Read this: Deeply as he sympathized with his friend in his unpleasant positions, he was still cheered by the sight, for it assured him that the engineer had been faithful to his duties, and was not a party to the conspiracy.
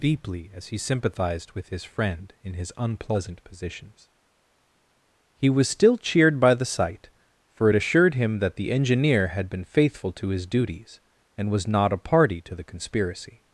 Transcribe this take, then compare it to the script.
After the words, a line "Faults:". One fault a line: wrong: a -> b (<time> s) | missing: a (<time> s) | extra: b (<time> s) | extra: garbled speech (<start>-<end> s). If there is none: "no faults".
Deeply as he sympathized with his friend in his unpleasant positions, he was still cheered by the sight, for it assured him that the engineer had been faithful to his duties, and was not a party to the conspiracy.
Faults:
no faults